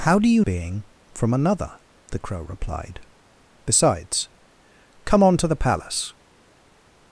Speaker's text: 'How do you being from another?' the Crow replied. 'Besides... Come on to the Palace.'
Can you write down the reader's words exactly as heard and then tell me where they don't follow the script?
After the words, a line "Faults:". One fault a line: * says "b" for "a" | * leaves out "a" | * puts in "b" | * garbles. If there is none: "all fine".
'How do you being from another?' the Crow replied. 'Besides... Come on to the Palace.'
Faults:
all fine